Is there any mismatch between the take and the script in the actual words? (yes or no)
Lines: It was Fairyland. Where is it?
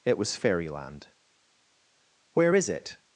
no